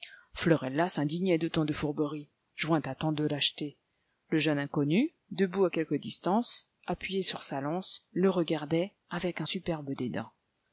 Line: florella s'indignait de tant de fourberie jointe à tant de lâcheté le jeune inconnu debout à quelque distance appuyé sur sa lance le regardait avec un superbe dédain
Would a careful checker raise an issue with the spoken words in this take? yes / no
no